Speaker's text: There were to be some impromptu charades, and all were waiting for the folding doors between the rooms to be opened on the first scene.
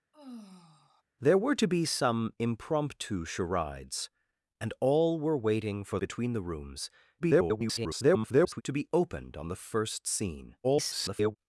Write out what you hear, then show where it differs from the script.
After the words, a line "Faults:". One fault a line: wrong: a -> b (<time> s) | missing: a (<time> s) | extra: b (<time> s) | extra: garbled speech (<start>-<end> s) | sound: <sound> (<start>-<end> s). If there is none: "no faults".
There were to be some impromptu charades, and all were waiting for between the rooms [garbled] to be opened on the first scene. [garbled]
Faults:
sound: sigh (0.1-1.0 s)
missing: the folding doors (6.0 s)
extra: garbled speech (7.2-8.6 s)
extra: garbled speech (10.6-11.4 s)